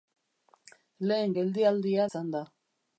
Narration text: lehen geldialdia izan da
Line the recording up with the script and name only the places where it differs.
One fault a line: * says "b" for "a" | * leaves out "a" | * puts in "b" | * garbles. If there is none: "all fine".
all fine